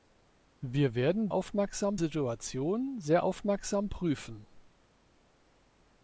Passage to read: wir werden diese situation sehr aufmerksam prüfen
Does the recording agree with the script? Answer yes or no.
no